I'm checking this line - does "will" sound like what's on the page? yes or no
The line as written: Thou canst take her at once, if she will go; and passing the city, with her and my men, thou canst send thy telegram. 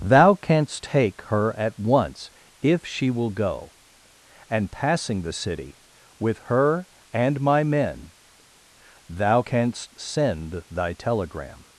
yes